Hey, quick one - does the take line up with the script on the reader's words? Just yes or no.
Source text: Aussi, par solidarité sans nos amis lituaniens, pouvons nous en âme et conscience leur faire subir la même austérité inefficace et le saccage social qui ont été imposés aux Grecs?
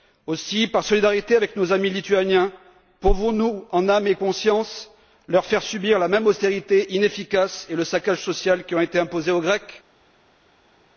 no